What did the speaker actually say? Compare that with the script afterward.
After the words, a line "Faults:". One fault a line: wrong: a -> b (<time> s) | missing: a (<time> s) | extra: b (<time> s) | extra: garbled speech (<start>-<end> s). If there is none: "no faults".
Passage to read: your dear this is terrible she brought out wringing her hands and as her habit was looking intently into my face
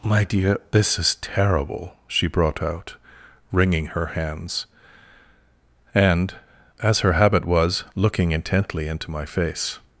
my dear this is terrible she brought out wringing her hands and as her habit was looking intently into my face
Faults:
wrong: your -> my (0.0 s)